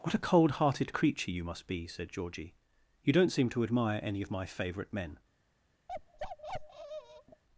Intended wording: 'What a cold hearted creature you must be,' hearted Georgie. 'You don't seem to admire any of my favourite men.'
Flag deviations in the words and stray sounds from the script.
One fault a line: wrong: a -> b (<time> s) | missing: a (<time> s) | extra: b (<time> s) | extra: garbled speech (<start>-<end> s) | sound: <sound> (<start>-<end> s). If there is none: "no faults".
wrong: hearted -> said (1.9 s)
sound: bark (5.9-7.4 s)